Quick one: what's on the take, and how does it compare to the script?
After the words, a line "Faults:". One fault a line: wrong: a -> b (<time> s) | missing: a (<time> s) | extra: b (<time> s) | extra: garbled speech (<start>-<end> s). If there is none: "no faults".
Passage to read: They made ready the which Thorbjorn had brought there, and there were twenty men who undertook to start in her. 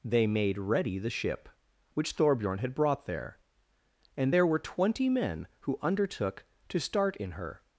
They made ready the ship which Thorbjorn had brought there, and there were twenty men who undertook to start in her.
Faults:
extra: ship (1.1 s)